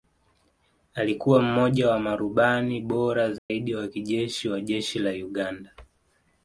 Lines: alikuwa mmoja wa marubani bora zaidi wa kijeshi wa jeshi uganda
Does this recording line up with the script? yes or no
no